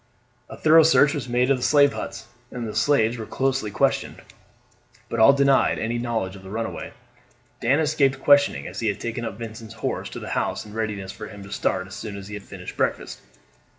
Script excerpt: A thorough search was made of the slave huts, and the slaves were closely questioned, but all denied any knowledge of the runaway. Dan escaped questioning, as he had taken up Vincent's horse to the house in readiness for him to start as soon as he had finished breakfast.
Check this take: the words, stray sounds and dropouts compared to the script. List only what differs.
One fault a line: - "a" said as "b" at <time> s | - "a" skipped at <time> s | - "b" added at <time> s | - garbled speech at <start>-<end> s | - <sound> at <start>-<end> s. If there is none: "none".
none